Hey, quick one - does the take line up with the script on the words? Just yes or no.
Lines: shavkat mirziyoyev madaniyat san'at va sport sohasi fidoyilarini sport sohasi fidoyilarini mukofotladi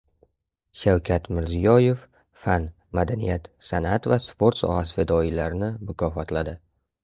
no